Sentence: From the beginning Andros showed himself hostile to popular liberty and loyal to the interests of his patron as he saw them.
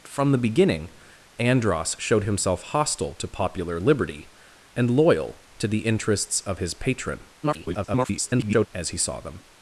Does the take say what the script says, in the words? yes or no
no